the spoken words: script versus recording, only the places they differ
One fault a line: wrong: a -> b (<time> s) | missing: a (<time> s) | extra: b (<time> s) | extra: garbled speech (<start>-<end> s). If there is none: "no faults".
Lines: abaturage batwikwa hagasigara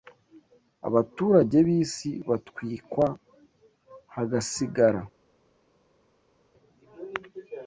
extra: b'isi (1.7 s)